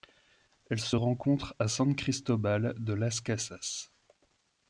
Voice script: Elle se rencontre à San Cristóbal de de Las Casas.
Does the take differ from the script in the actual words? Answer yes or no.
yes